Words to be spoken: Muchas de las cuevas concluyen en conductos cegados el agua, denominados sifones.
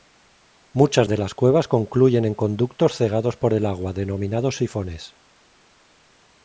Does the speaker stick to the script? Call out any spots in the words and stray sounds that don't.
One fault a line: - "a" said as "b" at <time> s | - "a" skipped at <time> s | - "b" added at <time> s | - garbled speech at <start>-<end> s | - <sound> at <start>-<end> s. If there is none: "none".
- "por" added at 3.4 s